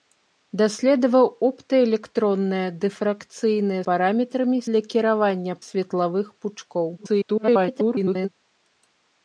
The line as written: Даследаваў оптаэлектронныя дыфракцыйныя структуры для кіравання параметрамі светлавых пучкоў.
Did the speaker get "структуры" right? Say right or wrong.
wrong